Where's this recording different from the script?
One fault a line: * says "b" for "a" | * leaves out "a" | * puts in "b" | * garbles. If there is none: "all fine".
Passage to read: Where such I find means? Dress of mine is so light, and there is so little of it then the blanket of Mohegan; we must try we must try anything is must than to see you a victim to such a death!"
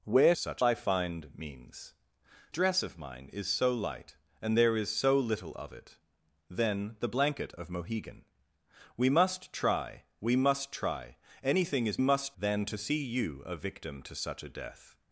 all fine